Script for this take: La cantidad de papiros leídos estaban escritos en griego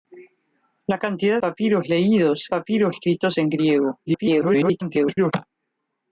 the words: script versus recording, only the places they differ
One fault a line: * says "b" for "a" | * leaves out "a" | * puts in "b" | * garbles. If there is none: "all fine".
* leaves out "de"
* says "papiros" for "estaban"
* garbles